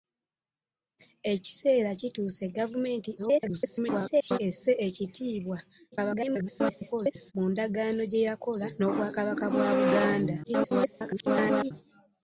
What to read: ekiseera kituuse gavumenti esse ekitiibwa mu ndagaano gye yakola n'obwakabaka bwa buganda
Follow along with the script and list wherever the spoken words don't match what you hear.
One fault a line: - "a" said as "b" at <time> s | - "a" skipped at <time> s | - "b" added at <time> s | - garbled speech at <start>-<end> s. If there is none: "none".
- garbled speech at 3.2-4.4 s
- garbled speech at 5.9-7.3 s
- garbled speech at 10.4-11.7 s